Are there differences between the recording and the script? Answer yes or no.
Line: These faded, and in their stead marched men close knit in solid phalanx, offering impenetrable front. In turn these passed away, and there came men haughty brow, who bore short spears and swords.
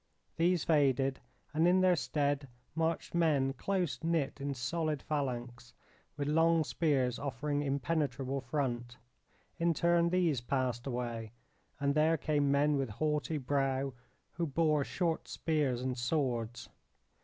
yes